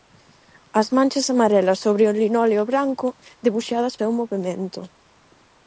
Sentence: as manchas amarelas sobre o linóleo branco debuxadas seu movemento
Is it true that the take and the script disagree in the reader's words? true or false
false